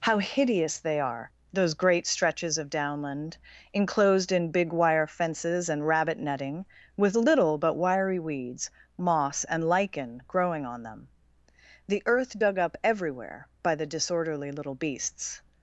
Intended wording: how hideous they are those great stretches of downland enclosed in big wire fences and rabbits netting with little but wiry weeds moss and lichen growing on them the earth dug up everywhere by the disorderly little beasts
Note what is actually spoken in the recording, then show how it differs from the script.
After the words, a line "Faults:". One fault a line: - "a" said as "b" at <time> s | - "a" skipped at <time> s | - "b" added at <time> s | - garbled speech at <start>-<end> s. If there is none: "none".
how hideous they are those great stretches of downland enclosed in big wire fences and rabbit netting with little but wiry weeds moss and lichen growing on them the earth dug up everywhere by the disorderly little beasts
Faults:
- "rabbits" said as "rabbit" at 5.8 s